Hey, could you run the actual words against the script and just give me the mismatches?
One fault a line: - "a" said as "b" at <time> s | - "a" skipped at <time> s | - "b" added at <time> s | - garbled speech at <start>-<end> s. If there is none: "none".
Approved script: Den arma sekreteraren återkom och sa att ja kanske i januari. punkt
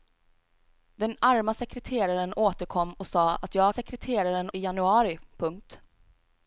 - "kanske" said as "sekreteraren" at 3.7 s